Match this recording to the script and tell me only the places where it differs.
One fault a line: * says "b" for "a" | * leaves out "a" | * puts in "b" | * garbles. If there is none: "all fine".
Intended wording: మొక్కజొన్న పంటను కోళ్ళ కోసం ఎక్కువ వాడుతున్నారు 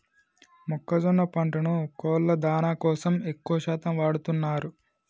* puts in "దానా"
* puts in "శాతం"